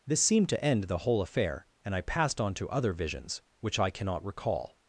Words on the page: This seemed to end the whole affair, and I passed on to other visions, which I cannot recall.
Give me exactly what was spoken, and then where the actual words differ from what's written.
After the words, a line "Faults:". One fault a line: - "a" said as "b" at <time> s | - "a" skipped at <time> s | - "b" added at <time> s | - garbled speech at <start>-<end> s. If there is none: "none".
This seemed to end the whole affair, and I passed on to other visions, which I cannot recall.
Faults:
none